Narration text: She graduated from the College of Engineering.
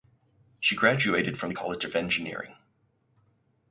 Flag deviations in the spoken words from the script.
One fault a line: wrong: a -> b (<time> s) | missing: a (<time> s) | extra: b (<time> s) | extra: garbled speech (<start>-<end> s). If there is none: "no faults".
no faults